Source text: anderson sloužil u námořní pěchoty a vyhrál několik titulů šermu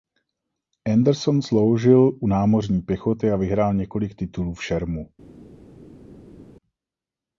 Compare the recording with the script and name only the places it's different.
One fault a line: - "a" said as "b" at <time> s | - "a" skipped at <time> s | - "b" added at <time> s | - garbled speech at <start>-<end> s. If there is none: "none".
- "v" added at 4.5 s